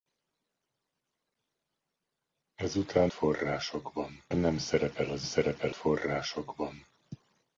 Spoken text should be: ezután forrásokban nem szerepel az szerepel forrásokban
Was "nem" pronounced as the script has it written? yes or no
yes